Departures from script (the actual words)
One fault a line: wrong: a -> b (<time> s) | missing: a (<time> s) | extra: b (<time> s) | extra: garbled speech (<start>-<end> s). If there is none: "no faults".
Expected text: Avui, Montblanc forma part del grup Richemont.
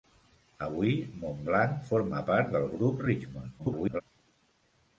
extra: garbled speech (3.6-4.0 s)